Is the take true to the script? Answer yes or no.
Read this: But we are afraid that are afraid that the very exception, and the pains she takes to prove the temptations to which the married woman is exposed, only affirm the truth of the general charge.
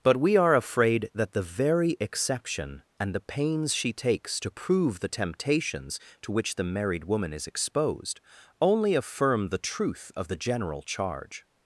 no